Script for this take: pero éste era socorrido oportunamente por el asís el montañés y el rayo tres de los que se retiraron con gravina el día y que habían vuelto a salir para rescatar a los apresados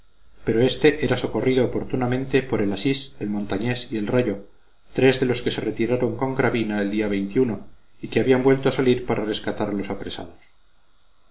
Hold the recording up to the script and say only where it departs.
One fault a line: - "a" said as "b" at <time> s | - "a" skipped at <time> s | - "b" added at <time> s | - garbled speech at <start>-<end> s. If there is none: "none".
none